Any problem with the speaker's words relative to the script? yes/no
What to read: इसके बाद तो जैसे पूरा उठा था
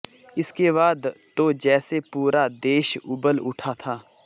yes